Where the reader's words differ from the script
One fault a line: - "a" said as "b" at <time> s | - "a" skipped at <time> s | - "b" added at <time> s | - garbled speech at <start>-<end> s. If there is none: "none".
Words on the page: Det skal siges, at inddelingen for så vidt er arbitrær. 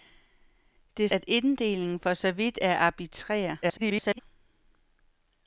- "skal siges" skipped at 1.1 s
- garbled speech at 3.6-4.2 s